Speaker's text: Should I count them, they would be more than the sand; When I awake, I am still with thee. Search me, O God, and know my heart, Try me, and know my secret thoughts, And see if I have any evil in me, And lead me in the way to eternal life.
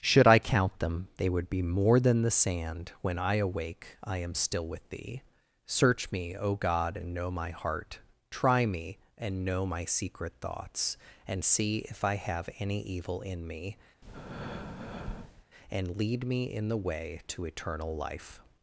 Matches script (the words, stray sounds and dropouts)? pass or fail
fail